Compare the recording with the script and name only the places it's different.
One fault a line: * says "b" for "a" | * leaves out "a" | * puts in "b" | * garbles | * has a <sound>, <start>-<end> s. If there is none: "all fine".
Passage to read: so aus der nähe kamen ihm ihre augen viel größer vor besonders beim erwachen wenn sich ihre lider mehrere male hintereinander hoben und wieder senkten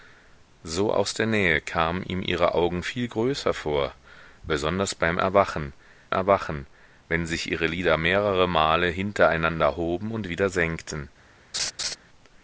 * puts in "erwachen"
* has a laugh, 11.5-12.0 s